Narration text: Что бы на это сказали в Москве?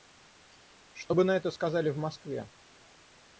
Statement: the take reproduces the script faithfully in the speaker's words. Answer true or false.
true